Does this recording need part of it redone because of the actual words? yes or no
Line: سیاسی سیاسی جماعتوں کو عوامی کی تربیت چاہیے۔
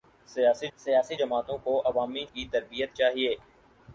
no